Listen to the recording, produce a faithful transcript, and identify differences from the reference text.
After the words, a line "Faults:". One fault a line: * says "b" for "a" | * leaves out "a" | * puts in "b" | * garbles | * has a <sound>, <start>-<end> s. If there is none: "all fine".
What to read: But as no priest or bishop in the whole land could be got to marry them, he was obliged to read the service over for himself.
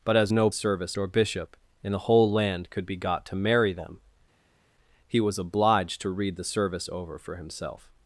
But as no service or bishop in the whole land could be got to marry them, he was obliged to read the service over for himself.
Faults:
* says "service" for "priest"